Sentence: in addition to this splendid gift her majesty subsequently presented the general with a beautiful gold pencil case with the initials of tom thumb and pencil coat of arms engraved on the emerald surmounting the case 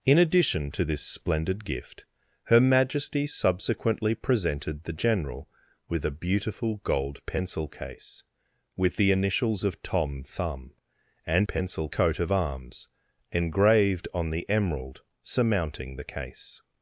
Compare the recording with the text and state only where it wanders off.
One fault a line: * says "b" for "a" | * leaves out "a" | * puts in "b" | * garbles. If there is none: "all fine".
all fine